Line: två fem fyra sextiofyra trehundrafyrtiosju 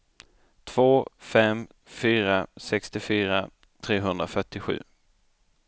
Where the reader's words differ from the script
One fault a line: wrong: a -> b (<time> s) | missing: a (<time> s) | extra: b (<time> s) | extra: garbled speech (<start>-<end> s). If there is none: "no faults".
no faults